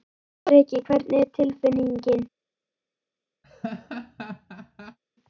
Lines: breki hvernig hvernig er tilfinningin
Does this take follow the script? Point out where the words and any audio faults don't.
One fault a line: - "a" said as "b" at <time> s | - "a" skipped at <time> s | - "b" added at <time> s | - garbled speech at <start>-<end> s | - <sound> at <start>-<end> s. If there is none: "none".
- "hvernig" skipped at 1.2 s
- laugh at 3.4-5.0 s